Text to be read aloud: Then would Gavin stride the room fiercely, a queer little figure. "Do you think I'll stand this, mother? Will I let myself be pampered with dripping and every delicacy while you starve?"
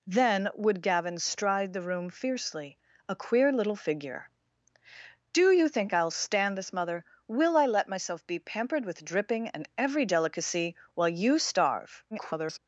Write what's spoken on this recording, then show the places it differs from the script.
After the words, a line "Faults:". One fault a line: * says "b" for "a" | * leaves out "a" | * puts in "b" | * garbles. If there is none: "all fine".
Then would Gavin stride the room fiercely, a queer little figure. "Do you think I'll stand this, mother? Will I let myself be pampered with dripping and every delicacy while you starve?" [garbled]
Faults:
* garbles